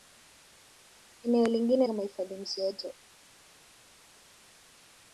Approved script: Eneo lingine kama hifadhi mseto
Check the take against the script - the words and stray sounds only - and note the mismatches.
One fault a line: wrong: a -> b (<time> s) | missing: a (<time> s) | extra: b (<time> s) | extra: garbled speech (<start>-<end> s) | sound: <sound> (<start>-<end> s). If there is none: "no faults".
no faults